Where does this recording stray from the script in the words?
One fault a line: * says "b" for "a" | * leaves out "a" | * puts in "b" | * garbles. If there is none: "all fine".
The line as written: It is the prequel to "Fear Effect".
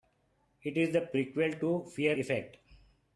all fine